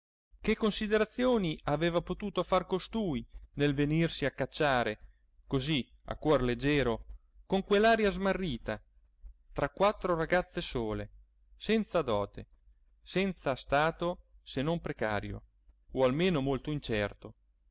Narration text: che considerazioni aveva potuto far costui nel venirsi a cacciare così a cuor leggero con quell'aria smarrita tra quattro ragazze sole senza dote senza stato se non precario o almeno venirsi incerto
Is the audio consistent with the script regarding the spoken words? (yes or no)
no